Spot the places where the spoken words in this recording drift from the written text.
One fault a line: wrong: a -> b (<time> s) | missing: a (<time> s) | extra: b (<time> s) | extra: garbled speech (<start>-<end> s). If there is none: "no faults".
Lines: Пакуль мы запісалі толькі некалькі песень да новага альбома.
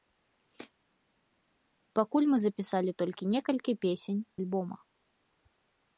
missing: да новага (4.2 s)